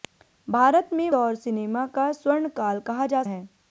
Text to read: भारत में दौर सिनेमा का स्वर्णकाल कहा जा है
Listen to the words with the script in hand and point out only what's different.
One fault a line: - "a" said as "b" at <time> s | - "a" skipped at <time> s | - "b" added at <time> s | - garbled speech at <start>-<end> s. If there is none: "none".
none